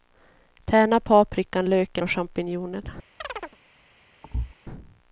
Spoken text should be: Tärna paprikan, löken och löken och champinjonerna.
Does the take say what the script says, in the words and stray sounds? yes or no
no